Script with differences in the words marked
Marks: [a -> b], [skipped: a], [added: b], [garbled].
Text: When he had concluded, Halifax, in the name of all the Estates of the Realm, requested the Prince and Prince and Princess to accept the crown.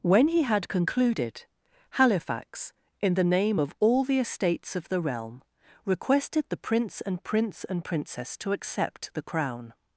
When he had concluded, Halifax, in the name of all the Estates of the Realm, requested the Prince and Prince and Princess to accept the crown.